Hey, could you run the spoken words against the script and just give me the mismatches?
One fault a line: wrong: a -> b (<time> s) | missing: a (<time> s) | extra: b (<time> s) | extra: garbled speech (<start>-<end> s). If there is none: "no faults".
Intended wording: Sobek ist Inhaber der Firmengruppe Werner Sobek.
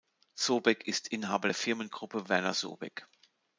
no faults